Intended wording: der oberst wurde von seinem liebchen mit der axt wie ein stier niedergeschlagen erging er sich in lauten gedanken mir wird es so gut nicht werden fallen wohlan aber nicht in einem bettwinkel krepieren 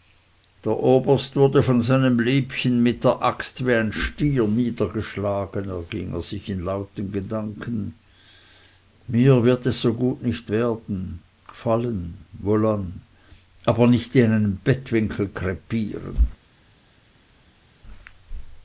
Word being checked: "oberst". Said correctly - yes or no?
yes